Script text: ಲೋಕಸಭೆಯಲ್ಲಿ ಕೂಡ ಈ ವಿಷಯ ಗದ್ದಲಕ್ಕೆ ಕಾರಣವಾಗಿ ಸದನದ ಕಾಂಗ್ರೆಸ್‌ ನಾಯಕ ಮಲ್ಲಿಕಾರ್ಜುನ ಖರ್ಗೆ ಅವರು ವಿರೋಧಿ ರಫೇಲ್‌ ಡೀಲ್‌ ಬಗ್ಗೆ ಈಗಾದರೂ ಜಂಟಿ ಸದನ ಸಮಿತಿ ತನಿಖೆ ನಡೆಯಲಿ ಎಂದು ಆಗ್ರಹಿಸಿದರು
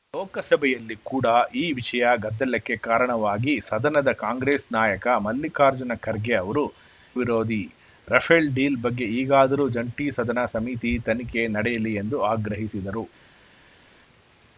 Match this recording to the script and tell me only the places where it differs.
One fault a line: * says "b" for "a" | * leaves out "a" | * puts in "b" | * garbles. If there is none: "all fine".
all fine